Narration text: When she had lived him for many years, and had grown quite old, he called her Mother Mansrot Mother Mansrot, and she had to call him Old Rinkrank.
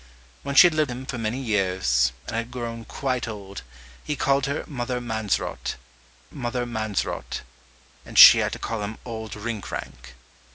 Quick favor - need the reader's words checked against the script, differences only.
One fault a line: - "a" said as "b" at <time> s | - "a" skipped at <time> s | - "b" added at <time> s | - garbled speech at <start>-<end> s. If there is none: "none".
none